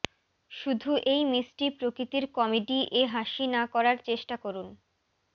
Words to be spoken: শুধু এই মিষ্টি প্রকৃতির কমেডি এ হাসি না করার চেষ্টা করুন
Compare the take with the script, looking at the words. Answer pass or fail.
pass